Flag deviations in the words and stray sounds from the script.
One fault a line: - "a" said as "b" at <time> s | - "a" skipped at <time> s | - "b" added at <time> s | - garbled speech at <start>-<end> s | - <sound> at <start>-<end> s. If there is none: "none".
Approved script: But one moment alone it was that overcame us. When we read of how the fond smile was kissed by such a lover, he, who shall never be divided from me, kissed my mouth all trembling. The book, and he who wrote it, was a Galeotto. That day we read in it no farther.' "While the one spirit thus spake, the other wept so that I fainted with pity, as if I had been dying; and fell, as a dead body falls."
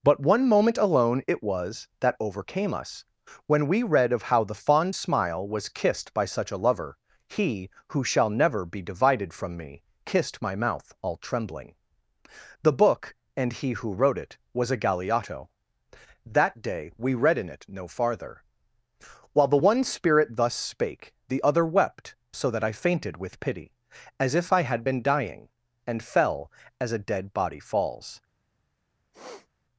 - sniff at 29.1-29.5 s